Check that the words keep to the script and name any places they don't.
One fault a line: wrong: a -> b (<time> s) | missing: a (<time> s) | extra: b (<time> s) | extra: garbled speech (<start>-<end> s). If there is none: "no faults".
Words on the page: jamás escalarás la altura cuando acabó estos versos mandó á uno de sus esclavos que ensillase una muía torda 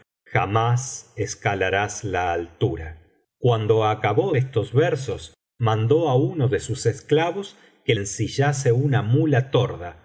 no faults